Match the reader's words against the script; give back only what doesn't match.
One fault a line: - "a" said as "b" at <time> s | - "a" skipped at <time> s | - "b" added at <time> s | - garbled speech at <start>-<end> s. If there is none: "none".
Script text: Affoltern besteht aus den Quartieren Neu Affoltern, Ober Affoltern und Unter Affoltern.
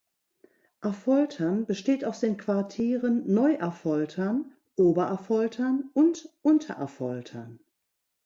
none